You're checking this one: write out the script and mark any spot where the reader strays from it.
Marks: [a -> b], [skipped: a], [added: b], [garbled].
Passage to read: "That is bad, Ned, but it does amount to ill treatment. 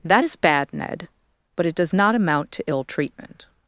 "That is bad, Ned, but it does [added: not] amount to ill treatment.